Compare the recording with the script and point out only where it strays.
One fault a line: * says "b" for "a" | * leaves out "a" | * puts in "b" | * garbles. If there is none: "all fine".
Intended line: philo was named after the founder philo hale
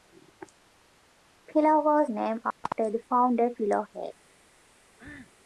all fine